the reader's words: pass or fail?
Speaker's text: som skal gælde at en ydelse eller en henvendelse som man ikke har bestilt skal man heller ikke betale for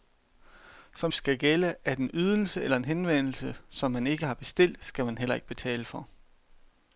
pass